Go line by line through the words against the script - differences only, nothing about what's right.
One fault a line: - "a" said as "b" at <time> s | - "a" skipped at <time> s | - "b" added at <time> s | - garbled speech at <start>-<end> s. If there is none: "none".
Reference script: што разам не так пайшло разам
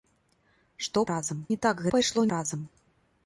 none